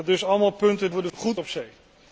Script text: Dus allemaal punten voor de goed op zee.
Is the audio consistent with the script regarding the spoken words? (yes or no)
yes